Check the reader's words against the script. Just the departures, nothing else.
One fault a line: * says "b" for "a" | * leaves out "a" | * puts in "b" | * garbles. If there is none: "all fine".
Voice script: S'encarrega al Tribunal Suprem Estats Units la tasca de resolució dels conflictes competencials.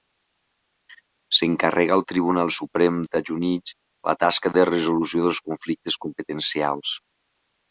all fine